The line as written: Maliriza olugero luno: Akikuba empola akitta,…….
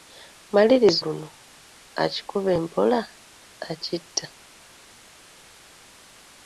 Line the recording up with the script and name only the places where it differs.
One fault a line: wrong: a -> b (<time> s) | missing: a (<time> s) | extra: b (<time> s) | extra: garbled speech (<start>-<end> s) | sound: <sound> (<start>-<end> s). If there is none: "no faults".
missing: olugero (1.0 s)